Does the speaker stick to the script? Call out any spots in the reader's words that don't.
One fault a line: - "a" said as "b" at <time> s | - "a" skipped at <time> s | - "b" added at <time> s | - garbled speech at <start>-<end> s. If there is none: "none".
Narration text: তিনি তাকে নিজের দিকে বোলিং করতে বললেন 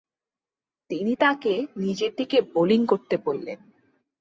none